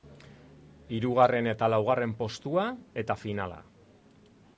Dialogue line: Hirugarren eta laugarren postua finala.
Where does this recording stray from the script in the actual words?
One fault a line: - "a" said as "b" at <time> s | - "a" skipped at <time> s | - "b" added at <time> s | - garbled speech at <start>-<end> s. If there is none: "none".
- "eta" added at 3.0 s